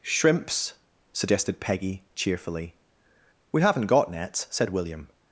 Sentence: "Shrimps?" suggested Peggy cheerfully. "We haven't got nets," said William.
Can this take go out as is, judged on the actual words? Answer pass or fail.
pass